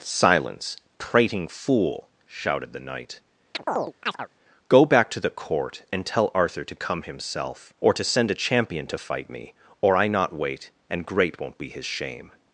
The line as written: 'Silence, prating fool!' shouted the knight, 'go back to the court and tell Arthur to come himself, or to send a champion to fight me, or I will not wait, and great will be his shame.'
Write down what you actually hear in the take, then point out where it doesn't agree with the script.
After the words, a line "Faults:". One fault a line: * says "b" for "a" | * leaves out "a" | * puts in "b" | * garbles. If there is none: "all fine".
'Silence, prating fool!' shouted the knight, 'go back to the court and tell Arthur to come himself, or to send a champion to fight me, or I not wait, and great won't be his shame.'
Faults:
* leaves out "will"
* says "won't" for "will"